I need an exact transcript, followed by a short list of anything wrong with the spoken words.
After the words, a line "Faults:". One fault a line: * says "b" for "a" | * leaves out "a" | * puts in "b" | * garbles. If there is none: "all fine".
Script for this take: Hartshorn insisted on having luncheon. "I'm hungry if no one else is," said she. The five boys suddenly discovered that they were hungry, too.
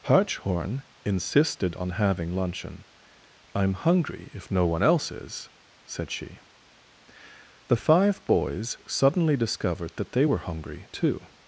Hartshorn insisted on having luncheon. "I'm hungry if no one else is," said she. The five boys suddenly discovered that they were hungry, too.
Faults:
all fine